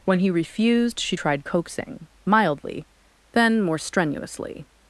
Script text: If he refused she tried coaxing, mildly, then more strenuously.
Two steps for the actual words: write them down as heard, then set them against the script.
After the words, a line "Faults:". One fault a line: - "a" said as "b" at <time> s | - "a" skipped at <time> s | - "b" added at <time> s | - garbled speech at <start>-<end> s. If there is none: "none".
When he refused she tried coaxing, mildly, then more strenuously.
Faults:
- "If" said as "When" at 0.0 s